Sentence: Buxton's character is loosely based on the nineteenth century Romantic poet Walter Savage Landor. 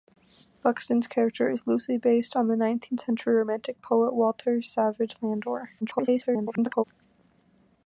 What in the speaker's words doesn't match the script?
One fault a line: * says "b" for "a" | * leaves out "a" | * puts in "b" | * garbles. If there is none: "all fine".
* garbles